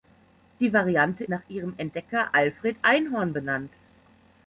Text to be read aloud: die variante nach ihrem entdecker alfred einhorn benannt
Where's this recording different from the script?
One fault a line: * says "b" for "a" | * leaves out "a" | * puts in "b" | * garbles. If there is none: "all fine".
all fine